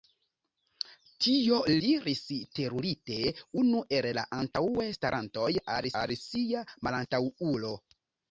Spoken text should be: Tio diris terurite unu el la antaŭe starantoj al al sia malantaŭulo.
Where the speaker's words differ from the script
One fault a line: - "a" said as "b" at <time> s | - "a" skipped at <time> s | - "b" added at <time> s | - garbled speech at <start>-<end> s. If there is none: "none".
none